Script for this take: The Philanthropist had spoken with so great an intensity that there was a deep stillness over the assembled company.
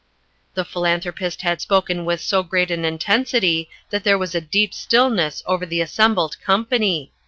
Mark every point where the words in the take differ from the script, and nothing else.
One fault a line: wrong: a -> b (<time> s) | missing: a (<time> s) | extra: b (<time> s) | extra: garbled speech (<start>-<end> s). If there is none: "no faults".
no faults